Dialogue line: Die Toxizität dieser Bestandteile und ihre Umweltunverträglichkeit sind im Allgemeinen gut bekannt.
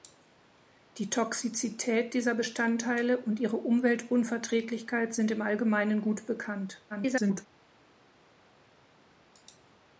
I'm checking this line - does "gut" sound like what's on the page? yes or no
yes